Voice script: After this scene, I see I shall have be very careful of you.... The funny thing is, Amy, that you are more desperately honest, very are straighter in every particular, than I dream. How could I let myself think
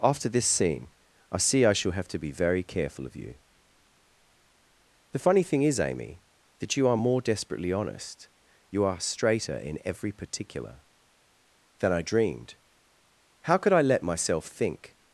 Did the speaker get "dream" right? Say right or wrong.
wrong